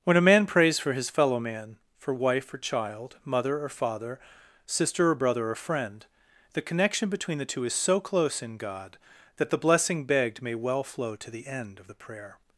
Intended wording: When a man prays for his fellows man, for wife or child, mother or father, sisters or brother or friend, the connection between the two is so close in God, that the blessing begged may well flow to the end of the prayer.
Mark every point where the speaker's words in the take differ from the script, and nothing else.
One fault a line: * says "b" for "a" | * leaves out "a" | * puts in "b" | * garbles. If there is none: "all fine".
* says "fellow" for "fellows"
* says "sister" for "sisters"